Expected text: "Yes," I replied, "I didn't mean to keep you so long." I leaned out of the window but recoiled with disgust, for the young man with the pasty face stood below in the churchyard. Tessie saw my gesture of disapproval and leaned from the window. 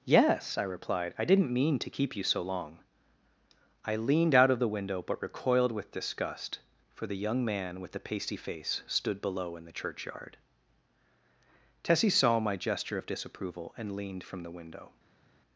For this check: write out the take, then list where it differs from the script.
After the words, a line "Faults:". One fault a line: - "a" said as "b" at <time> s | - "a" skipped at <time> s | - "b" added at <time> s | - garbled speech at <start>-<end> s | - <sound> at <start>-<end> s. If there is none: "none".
"Yes," I replied, "I didn't mean to keep you so long." I leaned out of the window but recoiled with disgust, for the young man with the pasty face stood below in the churchyard. Tessie saw my gesture of disapproval and leaned from the window.
Faults:
none